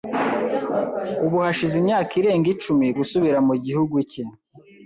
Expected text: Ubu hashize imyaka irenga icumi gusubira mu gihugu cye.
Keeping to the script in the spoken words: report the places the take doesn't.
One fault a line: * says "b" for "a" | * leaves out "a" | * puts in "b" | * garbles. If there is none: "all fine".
all fine